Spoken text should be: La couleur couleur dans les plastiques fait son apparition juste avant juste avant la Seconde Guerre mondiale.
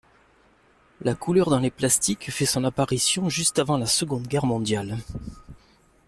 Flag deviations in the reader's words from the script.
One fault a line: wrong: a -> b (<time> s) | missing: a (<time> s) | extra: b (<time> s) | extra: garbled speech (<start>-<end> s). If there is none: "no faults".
missing: couleur (1.5 s)
missing: juste avant (3.8 s)